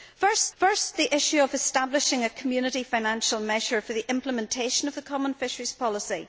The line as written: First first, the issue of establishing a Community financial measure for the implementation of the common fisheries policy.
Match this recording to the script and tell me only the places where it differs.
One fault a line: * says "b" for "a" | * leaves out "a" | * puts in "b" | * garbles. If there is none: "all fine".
all fine